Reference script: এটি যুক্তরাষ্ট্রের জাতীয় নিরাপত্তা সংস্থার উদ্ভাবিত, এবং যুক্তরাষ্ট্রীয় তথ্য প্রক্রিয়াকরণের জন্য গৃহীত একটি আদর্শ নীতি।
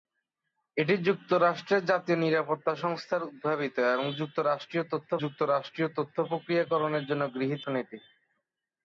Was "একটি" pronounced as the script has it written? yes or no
no